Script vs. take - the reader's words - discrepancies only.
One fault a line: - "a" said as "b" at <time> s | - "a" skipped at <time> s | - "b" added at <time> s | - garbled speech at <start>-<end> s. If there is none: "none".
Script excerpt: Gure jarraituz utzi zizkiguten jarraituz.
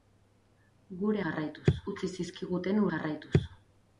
none